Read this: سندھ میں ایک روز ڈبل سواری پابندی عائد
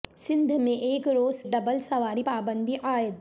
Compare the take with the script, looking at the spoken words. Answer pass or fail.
pass